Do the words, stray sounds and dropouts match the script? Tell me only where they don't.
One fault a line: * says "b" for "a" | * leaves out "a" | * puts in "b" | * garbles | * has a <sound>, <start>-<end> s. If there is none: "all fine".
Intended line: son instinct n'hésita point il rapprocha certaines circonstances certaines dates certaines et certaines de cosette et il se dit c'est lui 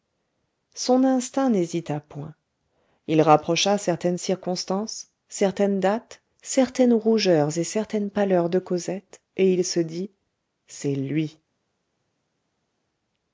* puts in "rougeurs"
* puts in "pâleurs"